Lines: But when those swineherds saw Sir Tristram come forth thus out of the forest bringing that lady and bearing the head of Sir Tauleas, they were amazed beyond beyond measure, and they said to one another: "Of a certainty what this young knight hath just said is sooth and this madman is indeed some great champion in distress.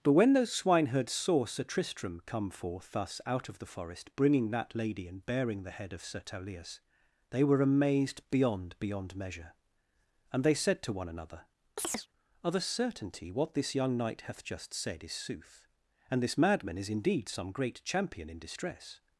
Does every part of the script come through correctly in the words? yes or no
yes